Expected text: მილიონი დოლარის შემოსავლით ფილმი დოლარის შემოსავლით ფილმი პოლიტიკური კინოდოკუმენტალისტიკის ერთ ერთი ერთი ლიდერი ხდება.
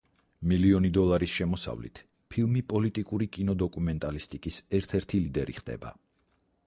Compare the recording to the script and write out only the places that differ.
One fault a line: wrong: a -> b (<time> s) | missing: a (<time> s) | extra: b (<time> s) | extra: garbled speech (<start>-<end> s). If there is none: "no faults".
missing: დოლარის შემოსავლით ფილმი (2.6 s)
missing: ერთი (5.2 s)